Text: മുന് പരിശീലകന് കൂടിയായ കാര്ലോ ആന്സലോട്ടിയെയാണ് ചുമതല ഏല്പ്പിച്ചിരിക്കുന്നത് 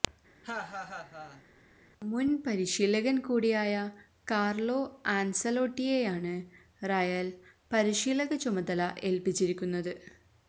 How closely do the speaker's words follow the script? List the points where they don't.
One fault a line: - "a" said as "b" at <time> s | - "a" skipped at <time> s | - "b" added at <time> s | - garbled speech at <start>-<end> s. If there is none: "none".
- "റയല് പരിശീലക" added at 6.8 s